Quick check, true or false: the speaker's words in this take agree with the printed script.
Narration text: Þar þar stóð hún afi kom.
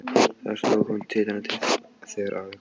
false